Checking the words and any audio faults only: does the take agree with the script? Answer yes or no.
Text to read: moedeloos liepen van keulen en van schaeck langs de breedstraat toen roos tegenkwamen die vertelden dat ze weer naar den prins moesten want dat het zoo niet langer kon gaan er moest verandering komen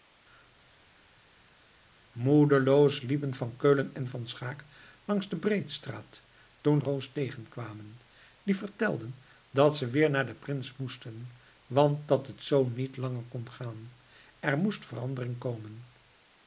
yes